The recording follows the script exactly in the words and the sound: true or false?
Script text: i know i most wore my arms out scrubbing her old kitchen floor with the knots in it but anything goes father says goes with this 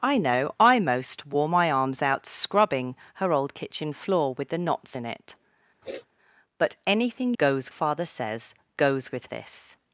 false